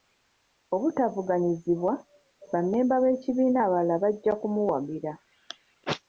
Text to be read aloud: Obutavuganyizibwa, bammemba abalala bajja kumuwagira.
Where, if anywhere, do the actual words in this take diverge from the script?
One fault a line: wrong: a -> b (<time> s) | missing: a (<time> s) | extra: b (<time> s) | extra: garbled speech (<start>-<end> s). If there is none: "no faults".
extra: b'ekibiina (3.0 s)